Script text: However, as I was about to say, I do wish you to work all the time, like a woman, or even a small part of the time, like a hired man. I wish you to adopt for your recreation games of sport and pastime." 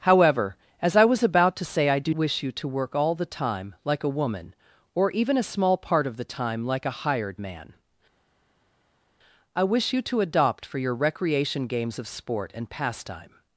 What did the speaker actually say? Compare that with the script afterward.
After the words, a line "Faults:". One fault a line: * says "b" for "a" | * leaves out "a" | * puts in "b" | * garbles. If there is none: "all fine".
However, as I was about to say, I do wish you to work all the time, like a woman, or even a small part of the time, like a hired man. I wish you to adopt for your recreation games of sport and pastime."
Faults:
all fine